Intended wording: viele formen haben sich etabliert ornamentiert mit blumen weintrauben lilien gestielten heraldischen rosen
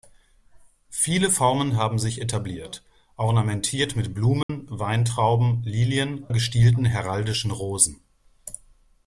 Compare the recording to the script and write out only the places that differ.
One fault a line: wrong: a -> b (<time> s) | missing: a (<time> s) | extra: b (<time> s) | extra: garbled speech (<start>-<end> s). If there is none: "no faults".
no faults